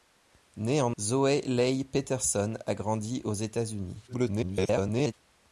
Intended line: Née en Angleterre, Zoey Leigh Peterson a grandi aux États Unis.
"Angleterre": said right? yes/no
no